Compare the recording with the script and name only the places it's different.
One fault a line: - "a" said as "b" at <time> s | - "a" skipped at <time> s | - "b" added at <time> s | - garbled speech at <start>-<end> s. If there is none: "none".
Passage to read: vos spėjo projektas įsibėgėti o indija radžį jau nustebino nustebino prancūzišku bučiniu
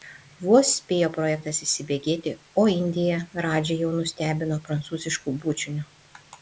- "nustebino" skipped at 4.6 s